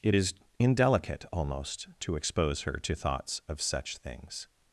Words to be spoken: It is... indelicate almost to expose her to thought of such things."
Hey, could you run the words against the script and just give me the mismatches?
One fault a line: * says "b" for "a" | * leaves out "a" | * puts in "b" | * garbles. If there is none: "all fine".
* says "thoughts" for "thought"